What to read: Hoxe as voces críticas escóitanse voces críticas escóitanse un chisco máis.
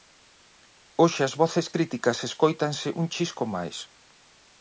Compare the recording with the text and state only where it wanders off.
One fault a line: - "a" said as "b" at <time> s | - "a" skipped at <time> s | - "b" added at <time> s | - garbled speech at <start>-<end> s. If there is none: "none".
- "voces críticas escóitanse" skipped at 2.9 s